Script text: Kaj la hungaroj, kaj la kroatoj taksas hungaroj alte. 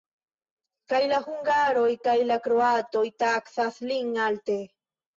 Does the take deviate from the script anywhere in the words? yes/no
yes